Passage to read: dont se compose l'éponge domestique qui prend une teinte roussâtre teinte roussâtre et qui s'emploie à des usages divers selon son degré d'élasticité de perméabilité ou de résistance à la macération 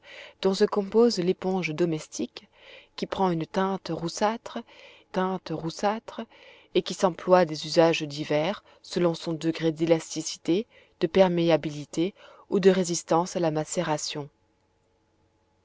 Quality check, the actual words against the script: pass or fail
pass